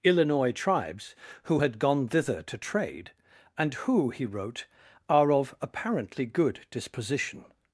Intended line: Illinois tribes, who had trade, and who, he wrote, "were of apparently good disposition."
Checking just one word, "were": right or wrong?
wrong